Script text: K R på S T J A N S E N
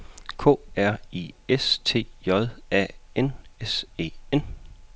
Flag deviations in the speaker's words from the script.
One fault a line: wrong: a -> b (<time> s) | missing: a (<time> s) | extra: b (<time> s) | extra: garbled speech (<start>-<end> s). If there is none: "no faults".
wrong: på -> I (1.1 s)